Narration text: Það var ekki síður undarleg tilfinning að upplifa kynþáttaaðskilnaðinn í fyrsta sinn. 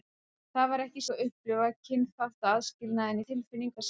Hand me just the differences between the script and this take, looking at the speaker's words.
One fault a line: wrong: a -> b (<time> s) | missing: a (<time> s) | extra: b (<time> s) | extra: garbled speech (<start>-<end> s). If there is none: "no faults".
missing: síður undarleg tilfinning (1.0 s)
wrong: fyrsta -> tilfinning (3.3 s)